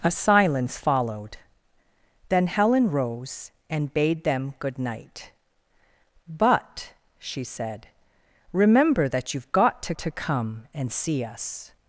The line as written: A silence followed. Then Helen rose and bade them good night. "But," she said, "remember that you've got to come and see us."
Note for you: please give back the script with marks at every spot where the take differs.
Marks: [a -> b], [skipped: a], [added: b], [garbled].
A silence followed. Then Helen rose and bade them good night. "But," she said, "remember that you've got to [added: to] come and see us."